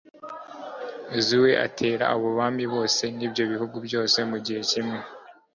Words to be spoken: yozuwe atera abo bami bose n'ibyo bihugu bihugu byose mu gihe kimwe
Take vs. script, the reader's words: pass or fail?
fail